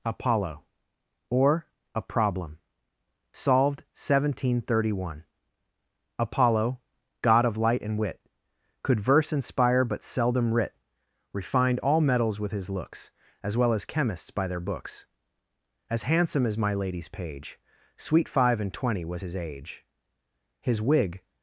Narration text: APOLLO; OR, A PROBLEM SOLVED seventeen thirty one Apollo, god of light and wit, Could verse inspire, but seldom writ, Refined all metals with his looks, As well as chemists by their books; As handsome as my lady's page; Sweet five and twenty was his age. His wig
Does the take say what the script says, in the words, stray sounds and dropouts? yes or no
yes